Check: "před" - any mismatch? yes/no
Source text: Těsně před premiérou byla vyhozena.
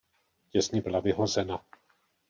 yes